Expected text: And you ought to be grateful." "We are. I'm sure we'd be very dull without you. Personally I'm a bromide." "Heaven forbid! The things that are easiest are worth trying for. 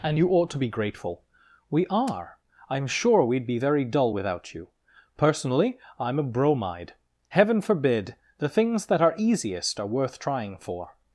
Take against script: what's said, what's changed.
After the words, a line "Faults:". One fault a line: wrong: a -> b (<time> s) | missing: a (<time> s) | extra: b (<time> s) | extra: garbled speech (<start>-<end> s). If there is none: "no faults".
And you ought to be grateful." "We are. I'm sure we'd be very dull without you. Personally I'm a bromide." "Heaven forbid! The things that are easiest are worth trying for.
Faults:
no faults